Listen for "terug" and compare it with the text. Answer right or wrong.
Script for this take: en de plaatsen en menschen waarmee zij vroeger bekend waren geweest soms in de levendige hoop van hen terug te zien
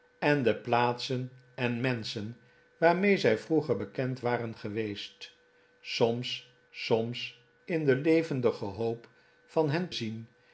wrong